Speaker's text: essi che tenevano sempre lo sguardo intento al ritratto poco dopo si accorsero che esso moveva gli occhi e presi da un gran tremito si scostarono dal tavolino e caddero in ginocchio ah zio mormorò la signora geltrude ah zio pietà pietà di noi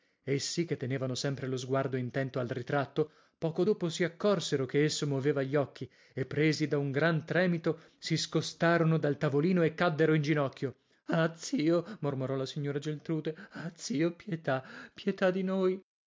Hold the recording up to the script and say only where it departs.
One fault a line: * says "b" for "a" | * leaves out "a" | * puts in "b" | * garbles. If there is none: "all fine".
all fine